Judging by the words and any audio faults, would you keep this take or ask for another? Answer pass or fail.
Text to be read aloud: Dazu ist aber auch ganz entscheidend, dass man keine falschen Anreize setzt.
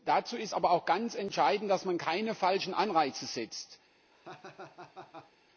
fail